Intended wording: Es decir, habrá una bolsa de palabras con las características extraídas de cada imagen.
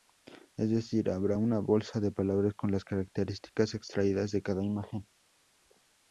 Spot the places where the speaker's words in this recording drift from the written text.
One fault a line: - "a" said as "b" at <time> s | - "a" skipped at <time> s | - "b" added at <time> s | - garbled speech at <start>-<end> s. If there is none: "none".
none